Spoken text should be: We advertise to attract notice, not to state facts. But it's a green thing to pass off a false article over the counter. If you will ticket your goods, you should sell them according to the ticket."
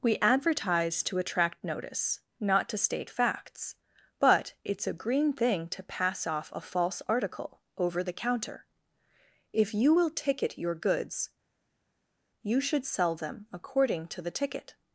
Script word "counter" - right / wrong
right